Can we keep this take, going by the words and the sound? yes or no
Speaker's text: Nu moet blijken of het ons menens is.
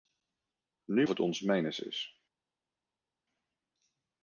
no